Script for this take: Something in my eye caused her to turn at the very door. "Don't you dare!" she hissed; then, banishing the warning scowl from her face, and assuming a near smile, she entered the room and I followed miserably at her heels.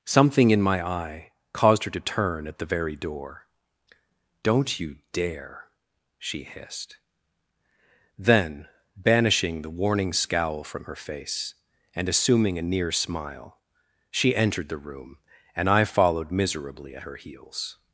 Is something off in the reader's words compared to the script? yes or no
no